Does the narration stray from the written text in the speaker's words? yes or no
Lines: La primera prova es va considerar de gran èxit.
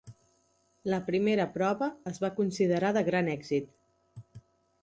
no